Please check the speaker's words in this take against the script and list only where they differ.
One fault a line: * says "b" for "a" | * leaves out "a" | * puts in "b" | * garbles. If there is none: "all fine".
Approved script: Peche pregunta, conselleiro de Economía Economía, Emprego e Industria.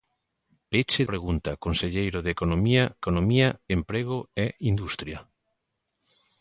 all fine